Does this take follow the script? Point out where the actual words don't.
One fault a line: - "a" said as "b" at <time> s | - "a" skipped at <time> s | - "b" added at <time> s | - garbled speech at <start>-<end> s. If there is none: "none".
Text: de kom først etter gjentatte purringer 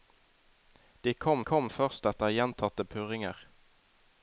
- "kom" added at 1.5 s